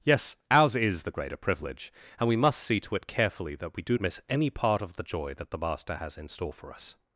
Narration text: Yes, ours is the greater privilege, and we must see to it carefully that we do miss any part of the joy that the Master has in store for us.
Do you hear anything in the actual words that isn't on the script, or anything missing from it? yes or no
no